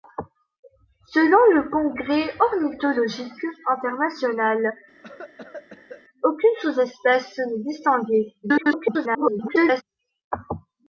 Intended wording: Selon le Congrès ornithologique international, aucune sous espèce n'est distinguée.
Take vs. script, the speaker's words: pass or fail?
fail